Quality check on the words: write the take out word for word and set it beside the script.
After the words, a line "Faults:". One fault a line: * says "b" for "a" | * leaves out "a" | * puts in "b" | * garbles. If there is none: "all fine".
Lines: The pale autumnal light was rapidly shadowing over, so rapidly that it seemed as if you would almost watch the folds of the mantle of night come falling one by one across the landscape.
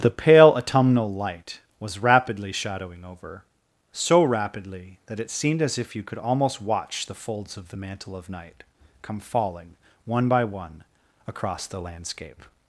The pale autumnal light was rapidly shadowing over, so rapidly that it seemed as if you could almost watch the folds of the mantle of night come falling one by one across the landscape.
Faults:
* says "could" for "would"